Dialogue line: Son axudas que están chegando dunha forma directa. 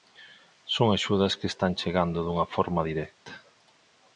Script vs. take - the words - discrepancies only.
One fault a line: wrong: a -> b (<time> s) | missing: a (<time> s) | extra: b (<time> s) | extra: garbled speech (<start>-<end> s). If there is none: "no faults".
no faults